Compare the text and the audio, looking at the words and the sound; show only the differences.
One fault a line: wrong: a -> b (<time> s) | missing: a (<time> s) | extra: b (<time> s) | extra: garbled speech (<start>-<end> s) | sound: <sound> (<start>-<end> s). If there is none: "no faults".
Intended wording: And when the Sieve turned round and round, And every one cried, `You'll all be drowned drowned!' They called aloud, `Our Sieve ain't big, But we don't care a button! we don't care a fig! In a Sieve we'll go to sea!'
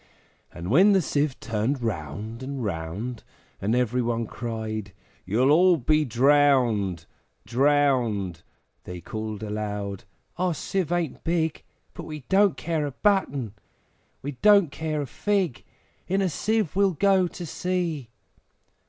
no faults